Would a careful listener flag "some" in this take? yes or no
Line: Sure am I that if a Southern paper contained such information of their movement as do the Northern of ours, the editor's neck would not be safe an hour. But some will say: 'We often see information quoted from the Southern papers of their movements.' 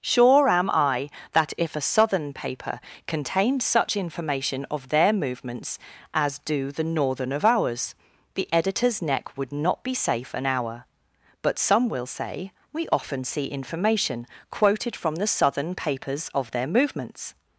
no